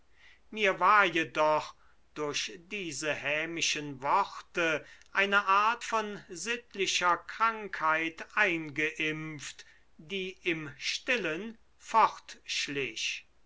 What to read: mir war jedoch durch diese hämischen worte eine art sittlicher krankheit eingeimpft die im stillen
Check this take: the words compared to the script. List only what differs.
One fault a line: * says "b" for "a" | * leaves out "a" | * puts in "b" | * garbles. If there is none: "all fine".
* puts in "von"